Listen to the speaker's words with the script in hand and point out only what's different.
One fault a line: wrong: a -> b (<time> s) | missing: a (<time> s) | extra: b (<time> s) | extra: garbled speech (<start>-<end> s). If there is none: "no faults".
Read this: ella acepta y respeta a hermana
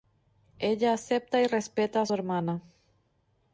no faults